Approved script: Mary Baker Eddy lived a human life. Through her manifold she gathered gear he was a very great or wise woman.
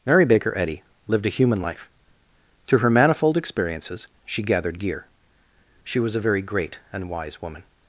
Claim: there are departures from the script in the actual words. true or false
true